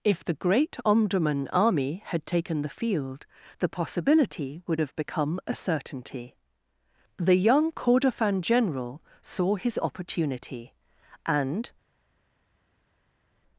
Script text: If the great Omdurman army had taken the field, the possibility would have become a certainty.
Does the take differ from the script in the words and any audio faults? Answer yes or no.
yes